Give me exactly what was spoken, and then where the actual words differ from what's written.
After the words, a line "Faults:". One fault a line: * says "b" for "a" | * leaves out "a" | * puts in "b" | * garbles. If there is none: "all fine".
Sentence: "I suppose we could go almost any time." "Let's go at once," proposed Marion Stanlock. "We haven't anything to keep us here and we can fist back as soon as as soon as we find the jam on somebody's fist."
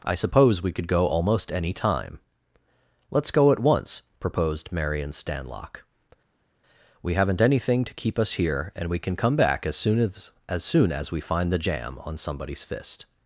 "I suppose we could go almost any time." "Let's go at once," proposed Marion Stanlock. "We haven't anything to keep us here and we can come back as soon as as soon as we find the jam on somebody's fist."
Faults:
* says "come" for "fist"